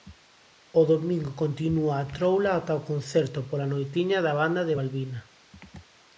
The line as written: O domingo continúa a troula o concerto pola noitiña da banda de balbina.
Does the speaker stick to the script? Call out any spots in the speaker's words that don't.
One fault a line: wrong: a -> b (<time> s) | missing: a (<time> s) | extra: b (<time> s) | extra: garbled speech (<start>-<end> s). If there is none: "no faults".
extra: ata (2.6 s)